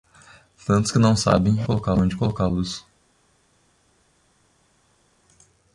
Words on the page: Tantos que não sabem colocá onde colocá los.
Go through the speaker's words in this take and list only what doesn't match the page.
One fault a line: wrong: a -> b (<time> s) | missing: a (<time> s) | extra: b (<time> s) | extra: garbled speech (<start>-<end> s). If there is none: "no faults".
no faults